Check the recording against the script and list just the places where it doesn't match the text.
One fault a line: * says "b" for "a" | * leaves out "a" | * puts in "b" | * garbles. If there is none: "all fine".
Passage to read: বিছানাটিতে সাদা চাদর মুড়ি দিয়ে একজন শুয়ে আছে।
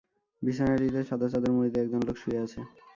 * puts in "লোক"